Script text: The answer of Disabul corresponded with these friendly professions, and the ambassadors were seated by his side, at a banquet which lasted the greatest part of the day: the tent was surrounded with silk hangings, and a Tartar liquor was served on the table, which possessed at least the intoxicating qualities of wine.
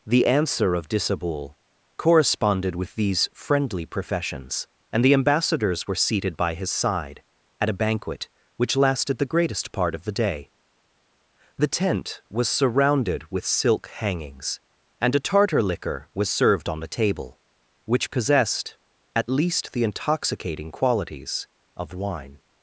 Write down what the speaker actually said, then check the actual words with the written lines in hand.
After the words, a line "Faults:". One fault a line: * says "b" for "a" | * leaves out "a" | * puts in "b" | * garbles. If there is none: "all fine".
The answer of Disabul corresponded with these friendly professions, and the ambassadors were seated by his side, at a banquet which lasted the greatest part of the day: the tent was surrounded with silk hangings, and a Tartar liquor was served on the table, which possessed at least the intoxicating qualities of wine.
Faults:
all fine